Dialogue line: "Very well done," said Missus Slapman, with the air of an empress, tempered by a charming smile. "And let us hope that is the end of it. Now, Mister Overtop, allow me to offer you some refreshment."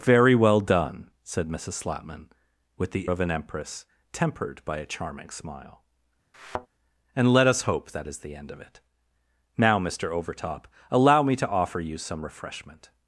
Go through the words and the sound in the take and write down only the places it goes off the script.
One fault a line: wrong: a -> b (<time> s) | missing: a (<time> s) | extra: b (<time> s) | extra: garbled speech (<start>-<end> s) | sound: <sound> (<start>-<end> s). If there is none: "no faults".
missing: air (3.1 s)
sound: thud (6.3-6.7 s)